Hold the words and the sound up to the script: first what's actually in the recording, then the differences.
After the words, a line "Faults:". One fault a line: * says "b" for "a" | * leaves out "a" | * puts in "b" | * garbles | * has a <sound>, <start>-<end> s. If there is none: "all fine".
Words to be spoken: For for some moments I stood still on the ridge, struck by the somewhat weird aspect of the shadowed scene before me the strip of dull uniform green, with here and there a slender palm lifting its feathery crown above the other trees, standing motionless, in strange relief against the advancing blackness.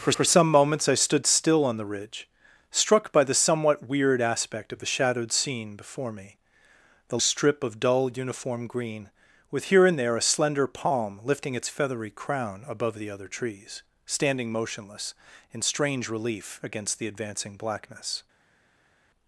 For for some moments I stood still on the ridge, struck by the somewhat weird aspect of the shadowed scene before me the strip of dull uniform green, with here and there a slender palm lifting its feathery crown above the other trees, standing motionless, in strange relief against the advancing blackness.
Faults:
all fine